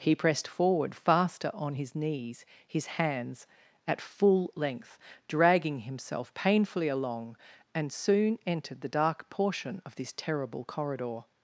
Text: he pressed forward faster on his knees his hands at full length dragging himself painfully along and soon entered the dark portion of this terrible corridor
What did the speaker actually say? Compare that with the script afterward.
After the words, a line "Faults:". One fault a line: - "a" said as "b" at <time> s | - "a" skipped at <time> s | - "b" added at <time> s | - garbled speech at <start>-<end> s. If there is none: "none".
he pressed forward faster on his knees his hands at full length dragging himself painfully along and soon entered the dark portion of this terrible corridor
Faults:
none